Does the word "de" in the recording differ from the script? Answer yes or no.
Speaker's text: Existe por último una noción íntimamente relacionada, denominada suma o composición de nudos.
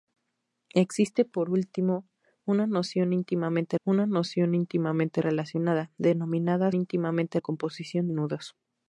yes